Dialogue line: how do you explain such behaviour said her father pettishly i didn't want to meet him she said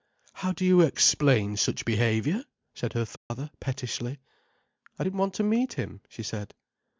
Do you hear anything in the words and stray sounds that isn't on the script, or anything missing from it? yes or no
yes